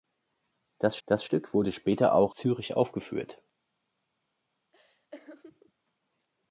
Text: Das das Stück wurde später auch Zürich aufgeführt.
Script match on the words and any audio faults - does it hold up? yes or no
no